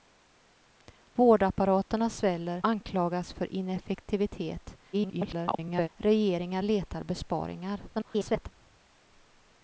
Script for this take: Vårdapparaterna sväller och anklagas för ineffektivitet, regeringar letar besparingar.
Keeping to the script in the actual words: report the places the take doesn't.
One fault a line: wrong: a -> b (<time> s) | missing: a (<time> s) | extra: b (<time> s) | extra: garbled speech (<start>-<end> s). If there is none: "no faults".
missing: och (2.6 s)
extra: garbled speech (4.9-5.9 s)
extra: garbled speech (7.9-8.5 s)